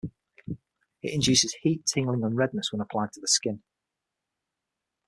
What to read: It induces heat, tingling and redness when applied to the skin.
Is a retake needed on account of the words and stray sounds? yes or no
no